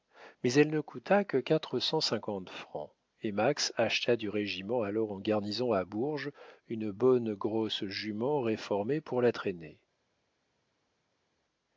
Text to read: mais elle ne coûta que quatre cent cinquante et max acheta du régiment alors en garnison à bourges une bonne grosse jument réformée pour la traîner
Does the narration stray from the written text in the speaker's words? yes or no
yes